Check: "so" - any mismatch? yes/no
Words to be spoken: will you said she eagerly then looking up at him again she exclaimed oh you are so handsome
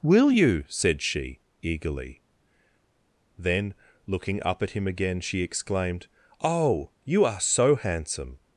no